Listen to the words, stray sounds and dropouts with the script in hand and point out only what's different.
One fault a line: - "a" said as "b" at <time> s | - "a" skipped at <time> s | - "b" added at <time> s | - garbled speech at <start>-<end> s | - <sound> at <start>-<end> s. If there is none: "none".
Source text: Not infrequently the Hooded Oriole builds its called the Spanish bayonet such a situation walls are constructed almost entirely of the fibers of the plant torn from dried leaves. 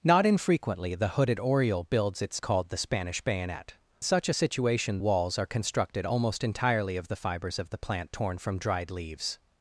none